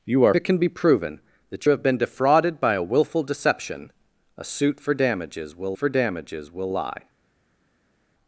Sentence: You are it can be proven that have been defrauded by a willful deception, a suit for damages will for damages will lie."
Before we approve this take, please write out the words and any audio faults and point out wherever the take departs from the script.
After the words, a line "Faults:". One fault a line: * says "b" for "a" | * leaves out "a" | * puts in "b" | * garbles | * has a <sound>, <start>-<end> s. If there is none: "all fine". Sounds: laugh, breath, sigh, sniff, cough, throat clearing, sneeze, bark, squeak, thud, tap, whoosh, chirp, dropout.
You are it can be proven that have been defrauded by a willful deception, a suit for damages will for damages will lie."
Faults:
all fine